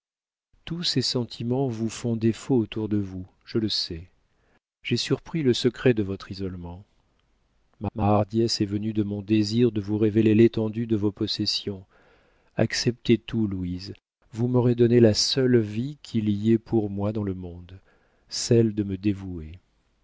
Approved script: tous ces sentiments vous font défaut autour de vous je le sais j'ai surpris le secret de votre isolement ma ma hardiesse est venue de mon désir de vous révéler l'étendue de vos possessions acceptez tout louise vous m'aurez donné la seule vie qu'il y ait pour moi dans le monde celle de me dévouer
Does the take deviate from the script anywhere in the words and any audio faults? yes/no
no